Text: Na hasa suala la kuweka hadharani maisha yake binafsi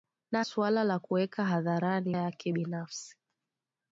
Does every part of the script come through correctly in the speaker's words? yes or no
no